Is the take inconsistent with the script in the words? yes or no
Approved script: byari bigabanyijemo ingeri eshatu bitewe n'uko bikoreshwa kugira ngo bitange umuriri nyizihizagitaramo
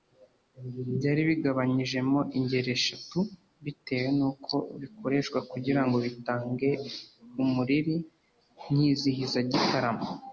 no